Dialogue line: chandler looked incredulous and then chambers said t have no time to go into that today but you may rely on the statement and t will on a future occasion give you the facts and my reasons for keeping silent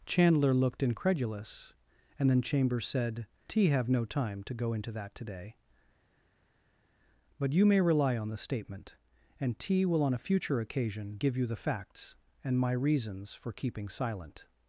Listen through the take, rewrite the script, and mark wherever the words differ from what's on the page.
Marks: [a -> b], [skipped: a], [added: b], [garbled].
chandler looked incredulous and then chambers said t have no time to go into that today but you may rely on the statement and t will on a future occasion give you the facts and my reasons for keeping silent